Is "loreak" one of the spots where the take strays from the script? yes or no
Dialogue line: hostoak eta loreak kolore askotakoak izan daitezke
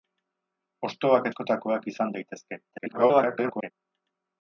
yes